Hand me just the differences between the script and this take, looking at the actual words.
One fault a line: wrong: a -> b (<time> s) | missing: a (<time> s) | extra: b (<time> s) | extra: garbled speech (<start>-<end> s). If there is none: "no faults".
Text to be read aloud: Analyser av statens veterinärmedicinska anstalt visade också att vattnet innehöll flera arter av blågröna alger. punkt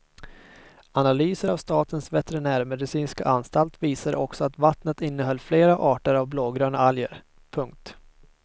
no faults